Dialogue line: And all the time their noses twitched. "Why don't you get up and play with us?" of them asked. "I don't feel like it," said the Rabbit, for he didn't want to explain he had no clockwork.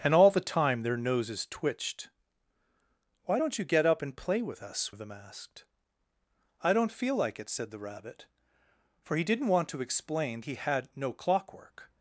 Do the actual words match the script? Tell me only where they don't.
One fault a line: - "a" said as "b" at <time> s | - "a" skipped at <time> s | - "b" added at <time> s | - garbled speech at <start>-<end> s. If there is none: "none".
none